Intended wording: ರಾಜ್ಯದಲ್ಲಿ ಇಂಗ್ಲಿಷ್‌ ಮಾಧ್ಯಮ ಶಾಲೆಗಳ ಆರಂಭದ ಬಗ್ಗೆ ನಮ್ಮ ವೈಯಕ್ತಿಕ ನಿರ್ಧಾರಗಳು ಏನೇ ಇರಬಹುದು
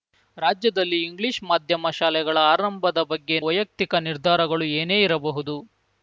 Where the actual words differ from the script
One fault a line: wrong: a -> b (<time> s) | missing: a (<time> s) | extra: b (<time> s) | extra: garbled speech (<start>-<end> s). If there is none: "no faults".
missing: ನಮ್ಮ (3.4 s)